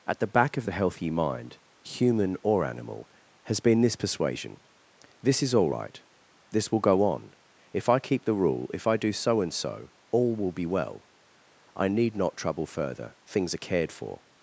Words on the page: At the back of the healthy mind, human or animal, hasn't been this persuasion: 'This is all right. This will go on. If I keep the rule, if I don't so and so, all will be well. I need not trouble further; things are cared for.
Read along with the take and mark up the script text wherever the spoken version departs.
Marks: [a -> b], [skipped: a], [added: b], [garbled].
At the back of the healthy mind, human or animal, [hasn't -> has] been this persuasion: 'This is all right. This will go on. If I keep the rule, if I [don't -> do] so and so, all will be well. I need not trouble further; things are cared for.